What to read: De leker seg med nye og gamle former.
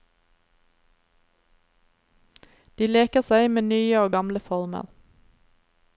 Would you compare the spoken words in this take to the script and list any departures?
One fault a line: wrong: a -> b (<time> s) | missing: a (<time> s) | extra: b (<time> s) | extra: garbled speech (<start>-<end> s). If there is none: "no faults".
no faults